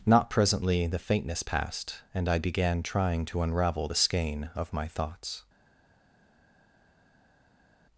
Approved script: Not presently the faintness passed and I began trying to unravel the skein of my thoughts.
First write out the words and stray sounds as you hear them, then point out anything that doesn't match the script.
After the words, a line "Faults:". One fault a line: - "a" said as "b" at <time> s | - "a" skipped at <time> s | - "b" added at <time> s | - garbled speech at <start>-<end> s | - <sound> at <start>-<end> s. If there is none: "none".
Not presently the faintness passed and I began trying to unravel the skein of my thoughts.
Faults:
none